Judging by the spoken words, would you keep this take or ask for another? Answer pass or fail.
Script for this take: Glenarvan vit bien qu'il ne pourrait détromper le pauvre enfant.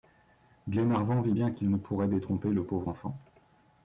pass